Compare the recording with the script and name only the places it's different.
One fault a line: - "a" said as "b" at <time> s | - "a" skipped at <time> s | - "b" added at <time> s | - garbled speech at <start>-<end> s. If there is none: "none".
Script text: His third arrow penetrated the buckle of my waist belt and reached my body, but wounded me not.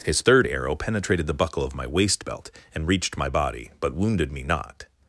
none